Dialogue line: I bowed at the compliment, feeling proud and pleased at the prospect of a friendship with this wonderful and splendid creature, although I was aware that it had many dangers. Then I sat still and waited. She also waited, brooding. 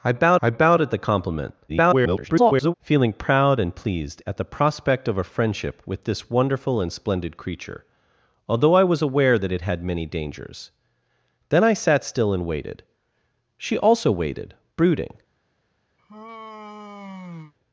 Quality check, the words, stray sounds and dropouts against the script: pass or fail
fail